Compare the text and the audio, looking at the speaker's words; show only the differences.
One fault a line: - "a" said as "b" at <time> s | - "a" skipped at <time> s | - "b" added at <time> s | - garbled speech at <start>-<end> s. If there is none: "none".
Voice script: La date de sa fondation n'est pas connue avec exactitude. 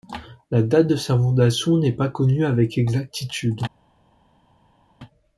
none